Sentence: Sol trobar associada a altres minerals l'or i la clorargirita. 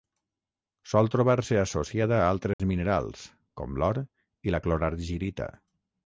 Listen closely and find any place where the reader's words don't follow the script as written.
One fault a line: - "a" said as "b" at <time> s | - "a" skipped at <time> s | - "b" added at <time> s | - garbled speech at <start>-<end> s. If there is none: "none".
- "se" added at 1.5 s
- "com" added at 3.6 s